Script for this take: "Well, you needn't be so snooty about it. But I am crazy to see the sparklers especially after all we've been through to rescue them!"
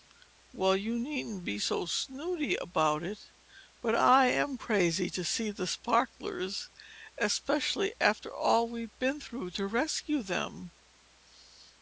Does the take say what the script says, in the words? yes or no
yes